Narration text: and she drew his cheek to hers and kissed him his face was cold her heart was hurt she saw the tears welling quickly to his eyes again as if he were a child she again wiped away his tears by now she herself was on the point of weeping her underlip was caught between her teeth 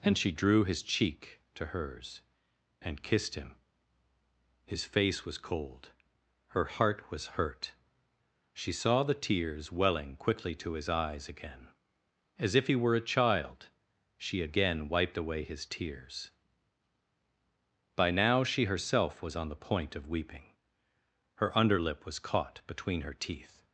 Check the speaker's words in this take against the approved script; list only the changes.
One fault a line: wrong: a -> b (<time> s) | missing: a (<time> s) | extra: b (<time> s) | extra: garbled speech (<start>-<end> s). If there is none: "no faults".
no faults